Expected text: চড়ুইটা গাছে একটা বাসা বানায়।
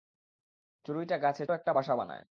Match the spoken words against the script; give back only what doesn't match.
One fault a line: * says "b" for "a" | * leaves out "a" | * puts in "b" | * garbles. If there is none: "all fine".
all fine